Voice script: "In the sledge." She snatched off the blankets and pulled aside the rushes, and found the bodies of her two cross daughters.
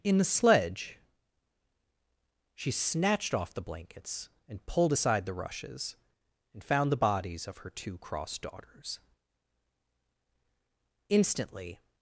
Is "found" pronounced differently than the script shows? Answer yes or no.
no